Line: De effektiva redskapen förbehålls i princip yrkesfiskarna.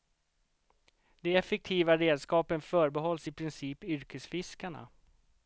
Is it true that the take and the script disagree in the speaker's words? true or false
false